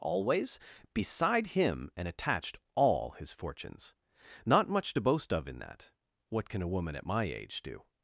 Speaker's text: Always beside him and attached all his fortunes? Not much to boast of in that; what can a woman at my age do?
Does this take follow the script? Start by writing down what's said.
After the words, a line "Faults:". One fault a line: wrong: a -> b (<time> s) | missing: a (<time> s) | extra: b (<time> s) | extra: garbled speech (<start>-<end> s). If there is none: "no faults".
Always beside him and attached all his fortunes? Not much to boast of in that; what can a woman at my age do?
Faults:
no faults